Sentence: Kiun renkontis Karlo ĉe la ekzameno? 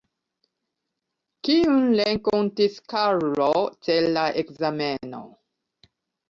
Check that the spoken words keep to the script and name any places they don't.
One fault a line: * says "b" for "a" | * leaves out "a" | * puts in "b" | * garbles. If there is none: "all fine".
all fine